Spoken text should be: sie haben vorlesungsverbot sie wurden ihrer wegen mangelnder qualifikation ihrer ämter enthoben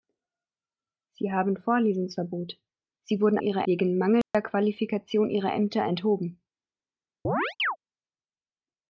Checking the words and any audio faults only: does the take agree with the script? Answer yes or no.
no